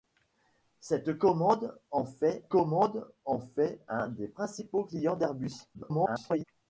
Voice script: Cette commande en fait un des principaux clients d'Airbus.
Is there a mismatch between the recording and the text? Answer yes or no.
yes